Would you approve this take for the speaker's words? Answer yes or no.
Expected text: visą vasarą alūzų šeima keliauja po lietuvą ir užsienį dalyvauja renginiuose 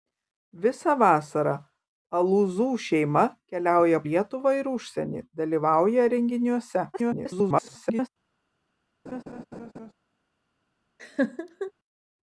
no